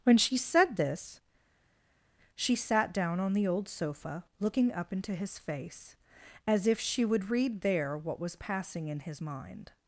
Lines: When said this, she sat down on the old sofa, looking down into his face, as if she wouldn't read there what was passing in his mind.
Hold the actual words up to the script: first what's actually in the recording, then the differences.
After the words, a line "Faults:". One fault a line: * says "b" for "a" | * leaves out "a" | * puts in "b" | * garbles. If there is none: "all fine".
When she said this, she sat down on the old sofa, looking up into his face, as if she would read there what was passing in his mind.
Faults:
* puts in "she"
* says "up" for "down"
* says "would" for "wouldn't"